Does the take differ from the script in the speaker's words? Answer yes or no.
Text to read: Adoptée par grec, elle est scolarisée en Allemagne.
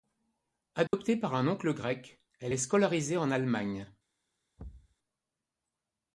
yes